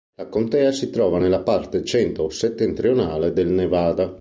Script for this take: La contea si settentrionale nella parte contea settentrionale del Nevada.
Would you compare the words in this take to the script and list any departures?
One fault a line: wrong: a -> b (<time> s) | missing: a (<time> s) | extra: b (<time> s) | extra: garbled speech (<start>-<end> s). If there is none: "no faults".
wrong: settentrionale -> trova (0.9 s)
wrong: contea -> centro (1.8 s)